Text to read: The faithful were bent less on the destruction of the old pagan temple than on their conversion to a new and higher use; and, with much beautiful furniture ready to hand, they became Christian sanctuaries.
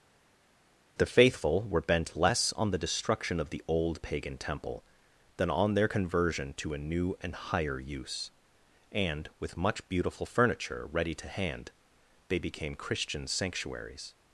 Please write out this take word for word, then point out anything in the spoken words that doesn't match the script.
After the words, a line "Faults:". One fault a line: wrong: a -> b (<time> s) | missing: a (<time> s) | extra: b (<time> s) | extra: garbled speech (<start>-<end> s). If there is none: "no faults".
The faithful were bent less on the destruction of the old pagan temple than on their conversion to a new and higher use; and, with much beautiful furniture ready to hand, they became Christian sanctuaries.
Faults:
no faults